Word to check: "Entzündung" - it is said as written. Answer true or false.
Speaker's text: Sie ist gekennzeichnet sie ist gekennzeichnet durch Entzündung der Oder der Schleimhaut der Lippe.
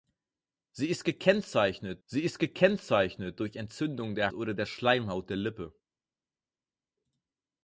true